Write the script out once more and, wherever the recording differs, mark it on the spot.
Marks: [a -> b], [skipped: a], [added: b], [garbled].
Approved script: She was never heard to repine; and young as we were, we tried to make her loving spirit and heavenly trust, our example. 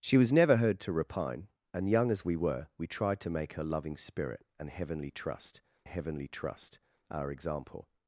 She was never heard to repine; and young as we were, we tried to make her loving spirit and heavenly trust, [added: heavenly trust] our example.